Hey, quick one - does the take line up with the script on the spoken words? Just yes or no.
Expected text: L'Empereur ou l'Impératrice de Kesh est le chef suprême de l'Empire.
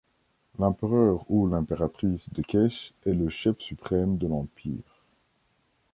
yes